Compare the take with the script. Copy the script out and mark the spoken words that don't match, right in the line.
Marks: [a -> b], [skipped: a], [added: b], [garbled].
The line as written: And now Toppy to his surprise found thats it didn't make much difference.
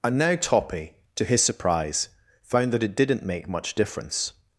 And now Toppy to his surprise found [thats -> that] it didn't make much difference.